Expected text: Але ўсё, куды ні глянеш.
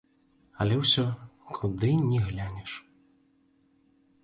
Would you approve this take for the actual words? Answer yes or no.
yes